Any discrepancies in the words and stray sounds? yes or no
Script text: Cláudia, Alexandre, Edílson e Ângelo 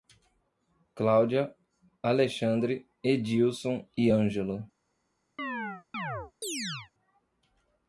yes